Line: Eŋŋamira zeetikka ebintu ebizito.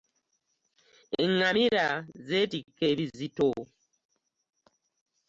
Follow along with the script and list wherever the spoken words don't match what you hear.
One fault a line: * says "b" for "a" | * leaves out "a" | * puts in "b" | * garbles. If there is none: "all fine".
* leaves out "ebintu"